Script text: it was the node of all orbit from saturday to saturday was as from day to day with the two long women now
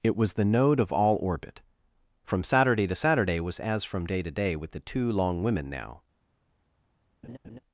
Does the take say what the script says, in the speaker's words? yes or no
yes